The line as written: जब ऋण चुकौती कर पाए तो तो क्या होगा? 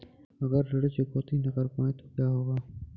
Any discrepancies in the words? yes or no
yes